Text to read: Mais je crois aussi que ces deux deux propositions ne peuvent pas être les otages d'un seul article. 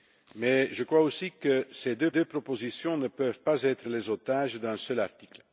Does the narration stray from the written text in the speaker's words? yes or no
no